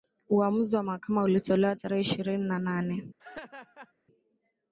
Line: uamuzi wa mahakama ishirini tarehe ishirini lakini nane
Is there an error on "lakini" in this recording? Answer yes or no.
yes